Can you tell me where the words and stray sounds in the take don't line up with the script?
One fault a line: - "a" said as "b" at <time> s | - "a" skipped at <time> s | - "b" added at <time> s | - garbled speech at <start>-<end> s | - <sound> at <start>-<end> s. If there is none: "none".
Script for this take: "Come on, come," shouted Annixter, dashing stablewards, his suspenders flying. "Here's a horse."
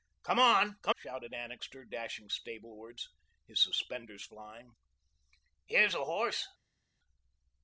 none